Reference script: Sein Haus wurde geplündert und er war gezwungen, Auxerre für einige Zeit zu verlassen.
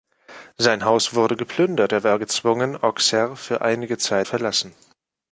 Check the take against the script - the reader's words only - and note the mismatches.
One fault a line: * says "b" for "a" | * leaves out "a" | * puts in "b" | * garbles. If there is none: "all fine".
* leaves out "und"
* leaves out "zu"